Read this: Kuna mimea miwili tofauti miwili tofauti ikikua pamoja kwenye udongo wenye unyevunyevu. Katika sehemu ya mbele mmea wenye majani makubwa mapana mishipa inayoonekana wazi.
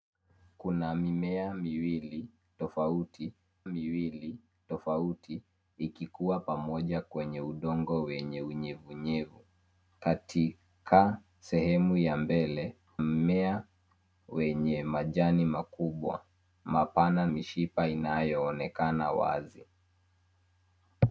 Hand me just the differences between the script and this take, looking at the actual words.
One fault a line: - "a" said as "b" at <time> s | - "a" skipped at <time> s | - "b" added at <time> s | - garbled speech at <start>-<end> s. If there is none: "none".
none